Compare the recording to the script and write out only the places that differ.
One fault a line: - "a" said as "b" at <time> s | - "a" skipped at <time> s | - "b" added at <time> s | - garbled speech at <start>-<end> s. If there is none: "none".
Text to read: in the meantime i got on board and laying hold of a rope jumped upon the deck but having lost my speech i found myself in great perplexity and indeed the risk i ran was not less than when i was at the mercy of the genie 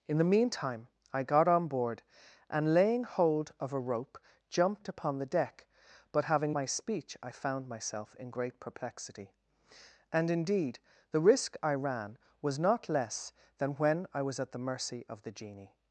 - "lost" skipped at 6.5 s